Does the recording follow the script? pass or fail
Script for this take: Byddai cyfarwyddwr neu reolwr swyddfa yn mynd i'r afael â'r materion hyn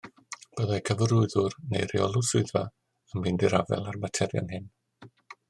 pass